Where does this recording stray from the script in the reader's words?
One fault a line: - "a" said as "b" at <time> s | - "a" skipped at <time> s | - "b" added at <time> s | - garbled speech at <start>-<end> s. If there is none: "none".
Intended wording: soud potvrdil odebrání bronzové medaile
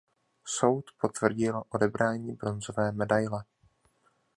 none